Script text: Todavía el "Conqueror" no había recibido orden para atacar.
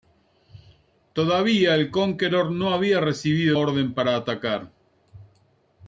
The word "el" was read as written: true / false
true